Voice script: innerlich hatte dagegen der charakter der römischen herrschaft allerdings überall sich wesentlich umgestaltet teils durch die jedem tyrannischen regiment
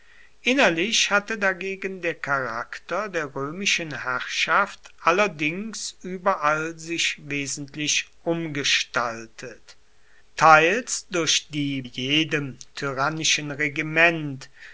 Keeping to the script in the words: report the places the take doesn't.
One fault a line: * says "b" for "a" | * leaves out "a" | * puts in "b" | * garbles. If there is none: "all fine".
all fine